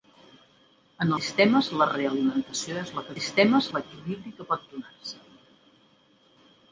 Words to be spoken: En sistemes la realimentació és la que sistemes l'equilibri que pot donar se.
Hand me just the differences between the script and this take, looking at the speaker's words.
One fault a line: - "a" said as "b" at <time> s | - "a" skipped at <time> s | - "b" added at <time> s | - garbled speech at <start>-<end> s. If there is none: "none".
none